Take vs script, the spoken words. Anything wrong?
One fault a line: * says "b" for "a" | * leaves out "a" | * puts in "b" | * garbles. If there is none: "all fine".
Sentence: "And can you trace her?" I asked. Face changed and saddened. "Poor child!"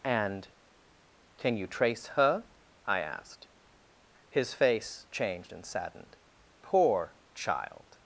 * puts in "His"